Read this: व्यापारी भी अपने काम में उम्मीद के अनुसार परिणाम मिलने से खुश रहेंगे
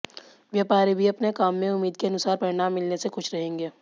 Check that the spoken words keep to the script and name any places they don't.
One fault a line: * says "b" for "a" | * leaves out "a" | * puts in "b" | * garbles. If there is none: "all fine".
all fine